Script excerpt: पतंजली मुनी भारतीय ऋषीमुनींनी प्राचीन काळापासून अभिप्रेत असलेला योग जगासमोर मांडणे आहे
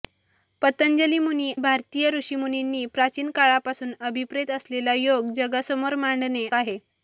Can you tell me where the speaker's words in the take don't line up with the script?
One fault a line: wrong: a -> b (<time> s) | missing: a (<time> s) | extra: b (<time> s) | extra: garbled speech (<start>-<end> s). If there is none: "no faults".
no faults